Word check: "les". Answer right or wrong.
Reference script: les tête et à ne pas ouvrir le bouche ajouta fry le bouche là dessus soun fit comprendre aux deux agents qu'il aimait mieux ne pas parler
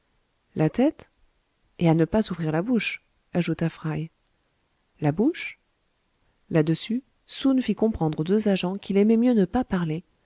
wrong